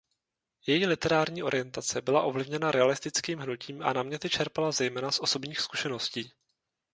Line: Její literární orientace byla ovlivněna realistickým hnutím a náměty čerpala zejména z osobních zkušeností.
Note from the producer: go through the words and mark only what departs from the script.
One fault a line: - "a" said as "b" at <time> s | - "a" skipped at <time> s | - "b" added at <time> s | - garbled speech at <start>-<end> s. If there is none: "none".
none